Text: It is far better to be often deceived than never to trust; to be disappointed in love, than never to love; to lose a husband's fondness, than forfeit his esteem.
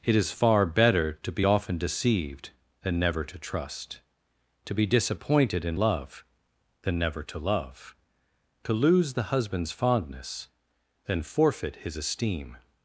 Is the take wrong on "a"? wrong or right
wrong